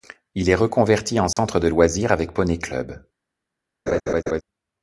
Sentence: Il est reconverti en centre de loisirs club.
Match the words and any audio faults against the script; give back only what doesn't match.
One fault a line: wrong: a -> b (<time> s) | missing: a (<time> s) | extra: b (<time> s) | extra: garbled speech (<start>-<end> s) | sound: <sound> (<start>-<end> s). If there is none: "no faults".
sound: dropout (1.3-1.4 s)
extra: avec poney (2.1 s)
sound: laugh (3.9-4.4 s)